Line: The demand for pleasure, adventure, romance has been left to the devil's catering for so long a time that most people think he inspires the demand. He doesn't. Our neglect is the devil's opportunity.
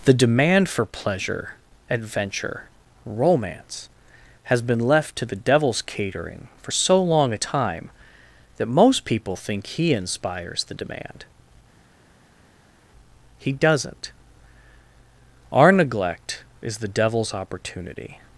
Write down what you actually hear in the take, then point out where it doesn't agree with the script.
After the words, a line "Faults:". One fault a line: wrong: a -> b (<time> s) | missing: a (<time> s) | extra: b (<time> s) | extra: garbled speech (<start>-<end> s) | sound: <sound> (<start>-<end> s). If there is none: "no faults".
The demand for pleasure, adventure, romance has been left to the devil's catering for so long a time that most people think he inspires the demand. He doesn't. Our neglect is the devil's opportunity.
Faults:
no faults